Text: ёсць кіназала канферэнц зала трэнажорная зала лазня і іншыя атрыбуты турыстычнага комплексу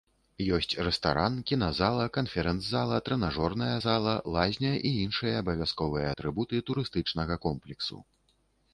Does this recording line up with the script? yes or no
no